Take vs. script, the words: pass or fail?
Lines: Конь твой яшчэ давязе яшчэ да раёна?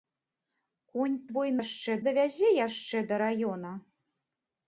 pass